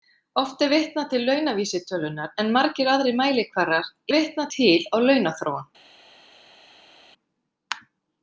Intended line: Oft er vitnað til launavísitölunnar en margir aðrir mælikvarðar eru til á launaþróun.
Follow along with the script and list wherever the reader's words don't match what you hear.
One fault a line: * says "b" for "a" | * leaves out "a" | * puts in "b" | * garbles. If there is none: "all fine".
* says "vitnað" for "eru"